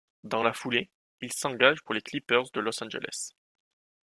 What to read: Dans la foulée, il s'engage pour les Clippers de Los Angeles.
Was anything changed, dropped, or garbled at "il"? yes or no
no